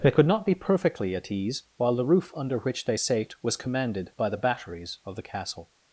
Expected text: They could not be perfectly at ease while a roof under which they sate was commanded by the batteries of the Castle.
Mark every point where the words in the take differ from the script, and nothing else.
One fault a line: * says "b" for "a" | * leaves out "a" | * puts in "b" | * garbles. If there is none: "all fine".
* says "the" for "a"